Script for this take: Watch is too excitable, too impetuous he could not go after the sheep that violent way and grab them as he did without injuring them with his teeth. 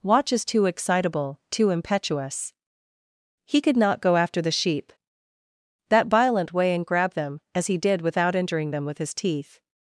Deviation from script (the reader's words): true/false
false